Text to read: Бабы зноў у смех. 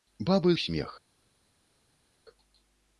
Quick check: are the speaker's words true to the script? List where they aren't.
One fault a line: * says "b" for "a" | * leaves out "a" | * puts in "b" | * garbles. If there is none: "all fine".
* leaves out "зноў"